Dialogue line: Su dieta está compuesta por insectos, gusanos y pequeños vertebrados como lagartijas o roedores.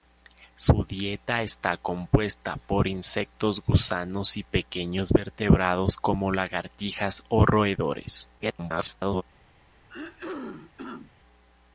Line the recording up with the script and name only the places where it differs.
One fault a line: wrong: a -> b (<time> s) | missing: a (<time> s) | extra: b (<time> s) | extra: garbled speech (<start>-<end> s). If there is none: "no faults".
extra: garbled speech (8.4-9.2 s)